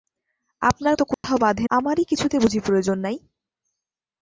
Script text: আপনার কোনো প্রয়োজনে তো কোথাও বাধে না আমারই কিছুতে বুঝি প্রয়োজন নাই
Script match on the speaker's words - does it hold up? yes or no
no